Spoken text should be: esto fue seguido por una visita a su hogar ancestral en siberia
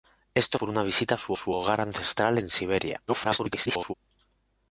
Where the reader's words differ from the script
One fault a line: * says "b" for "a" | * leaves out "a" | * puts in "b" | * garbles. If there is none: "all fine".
* leaves out "fue seguido"
* puts in "su"
* garbles